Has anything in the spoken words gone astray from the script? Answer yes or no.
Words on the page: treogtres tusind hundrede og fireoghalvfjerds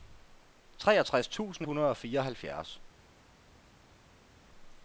no